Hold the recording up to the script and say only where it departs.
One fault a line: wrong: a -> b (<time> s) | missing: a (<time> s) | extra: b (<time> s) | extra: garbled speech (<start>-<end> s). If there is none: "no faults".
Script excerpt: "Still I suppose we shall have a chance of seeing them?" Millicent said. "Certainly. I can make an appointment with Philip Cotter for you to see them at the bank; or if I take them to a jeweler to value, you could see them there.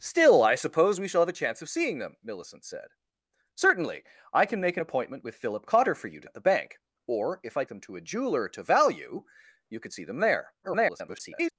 missing: see them (6.3 s)
missing: take (7.6 s)
extra: garbled speech (10.6-11.5 s)